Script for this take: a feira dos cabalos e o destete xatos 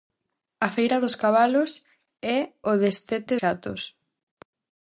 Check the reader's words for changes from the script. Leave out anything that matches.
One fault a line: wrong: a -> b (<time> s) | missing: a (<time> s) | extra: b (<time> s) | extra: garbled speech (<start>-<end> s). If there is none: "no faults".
no faults